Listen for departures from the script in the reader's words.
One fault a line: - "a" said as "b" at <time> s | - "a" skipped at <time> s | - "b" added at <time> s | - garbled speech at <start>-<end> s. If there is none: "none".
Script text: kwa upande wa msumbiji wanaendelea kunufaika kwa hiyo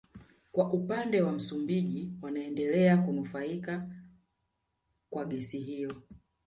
- "gesi" added at 5.2 s